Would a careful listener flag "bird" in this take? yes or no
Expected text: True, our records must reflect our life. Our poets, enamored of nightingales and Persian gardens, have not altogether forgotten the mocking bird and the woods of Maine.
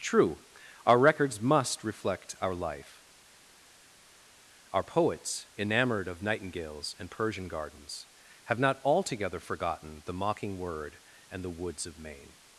yes